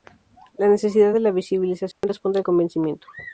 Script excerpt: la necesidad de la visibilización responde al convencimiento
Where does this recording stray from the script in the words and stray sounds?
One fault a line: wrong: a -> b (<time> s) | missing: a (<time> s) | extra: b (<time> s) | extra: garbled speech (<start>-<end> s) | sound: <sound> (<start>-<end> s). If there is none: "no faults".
sound: dropout (1.9-2.0 s)